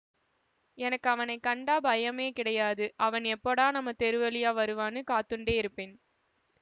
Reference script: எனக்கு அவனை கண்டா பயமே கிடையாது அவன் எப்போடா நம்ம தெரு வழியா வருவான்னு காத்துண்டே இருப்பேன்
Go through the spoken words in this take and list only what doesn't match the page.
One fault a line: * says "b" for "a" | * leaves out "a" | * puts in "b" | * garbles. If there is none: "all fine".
all fine